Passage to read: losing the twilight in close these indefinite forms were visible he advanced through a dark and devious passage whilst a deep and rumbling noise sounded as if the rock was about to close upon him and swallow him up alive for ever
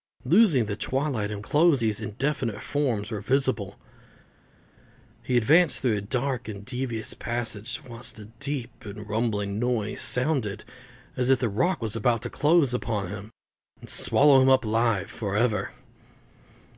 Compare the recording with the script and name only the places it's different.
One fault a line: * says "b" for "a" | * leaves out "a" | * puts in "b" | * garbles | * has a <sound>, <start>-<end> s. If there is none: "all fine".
all fine